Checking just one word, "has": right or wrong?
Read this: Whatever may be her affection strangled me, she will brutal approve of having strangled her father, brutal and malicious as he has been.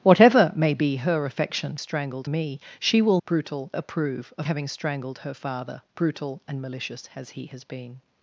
right